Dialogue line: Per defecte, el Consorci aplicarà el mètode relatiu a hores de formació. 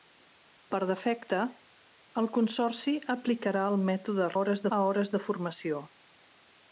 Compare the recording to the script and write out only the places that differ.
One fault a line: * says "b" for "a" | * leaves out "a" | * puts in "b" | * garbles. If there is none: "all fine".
* says "hores" for "relatiu"